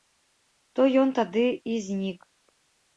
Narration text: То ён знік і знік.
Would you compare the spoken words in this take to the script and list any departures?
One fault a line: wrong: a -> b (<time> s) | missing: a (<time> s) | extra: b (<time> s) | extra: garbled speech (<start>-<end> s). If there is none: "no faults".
wrong: знік -> тады (1.2 s)